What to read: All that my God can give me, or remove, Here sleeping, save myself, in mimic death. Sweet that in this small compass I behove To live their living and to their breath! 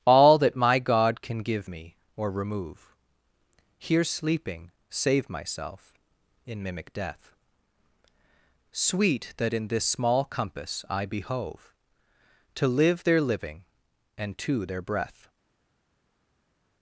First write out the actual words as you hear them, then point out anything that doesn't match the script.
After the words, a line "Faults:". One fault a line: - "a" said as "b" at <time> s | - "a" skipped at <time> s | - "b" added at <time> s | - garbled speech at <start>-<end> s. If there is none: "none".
All that my God can give me, or remove, Here sleeping, save myself, in mimic death. Sweet that in this small compass I behove To live their living and to their breath!
Faults:
none